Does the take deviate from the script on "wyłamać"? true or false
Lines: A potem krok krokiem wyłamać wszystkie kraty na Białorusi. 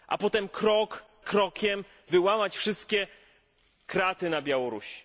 false